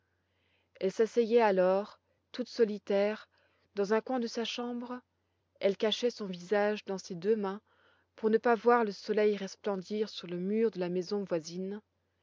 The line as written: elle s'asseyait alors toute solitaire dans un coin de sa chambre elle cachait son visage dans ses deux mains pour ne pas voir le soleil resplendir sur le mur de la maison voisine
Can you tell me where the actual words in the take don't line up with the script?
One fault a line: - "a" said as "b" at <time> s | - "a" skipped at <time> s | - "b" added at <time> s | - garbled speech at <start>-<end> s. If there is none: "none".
none